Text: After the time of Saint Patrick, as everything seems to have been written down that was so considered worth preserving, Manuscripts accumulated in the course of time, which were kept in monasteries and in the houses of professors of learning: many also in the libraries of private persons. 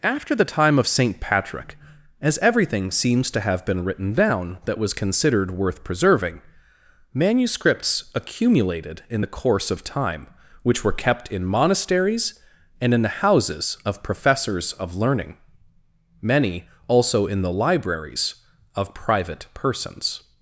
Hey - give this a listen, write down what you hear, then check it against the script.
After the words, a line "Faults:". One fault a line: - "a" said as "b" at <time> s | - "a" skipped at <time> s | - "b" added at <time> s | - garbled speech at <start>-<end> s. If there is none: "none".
After the time of Saint Patrick, as everything seems to have been written down that was considered worth preserving, Manuscripts accumulated in the course of time, which were kept in monasteries and in the houses of professors of learning: many also in the libraries of private persons.
Faults:
- "so" skipped at 5.0 s